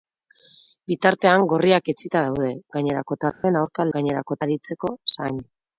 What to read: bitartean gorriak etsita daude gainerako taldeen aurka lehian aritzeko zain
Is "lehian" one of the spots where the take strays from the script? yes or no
yes